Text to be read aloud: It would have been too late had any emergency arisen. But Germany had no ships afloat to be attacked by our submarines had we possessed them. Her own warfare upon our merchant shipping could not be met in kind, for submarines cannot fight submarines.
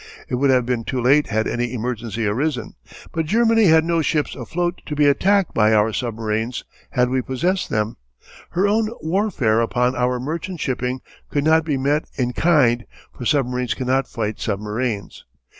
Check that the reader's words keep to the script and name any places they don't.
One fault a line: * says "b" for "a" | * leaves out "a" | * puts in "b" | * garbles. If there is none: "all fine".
all fine